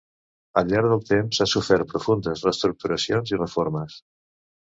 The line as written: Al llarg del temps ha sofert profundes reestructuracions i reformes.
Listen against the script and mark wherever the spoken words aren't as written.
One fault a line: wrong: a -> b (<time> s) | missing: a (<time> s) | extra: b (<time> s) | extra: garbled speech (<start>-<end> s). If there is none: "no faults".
no faults